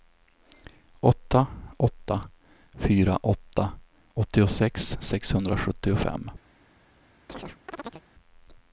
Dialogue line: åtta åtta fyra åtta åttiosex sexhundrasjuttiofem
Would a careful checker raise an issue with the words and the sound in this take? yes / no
yes